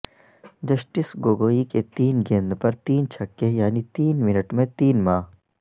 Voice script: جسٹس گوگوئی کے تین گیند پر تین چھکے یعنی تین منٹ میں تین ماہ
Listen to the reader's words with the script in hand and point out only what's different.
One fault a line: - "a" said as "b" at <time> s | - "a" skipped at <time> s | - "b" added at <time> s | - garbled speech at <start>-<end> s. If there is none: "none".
none